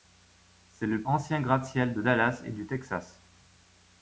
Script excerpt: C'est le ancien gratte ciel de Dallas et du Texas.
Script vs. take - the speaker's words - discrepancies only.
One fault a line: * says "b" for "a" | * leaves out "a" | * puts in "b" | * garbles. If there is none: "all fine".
all fine